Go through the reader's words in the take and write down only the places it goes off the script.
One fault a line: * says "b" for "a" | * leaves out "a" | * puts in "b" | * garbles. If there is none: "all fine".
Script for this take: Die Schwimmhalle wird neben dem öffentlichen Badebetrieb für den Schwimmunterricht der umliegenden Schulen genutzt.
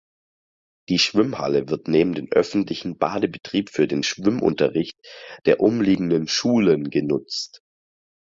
all fine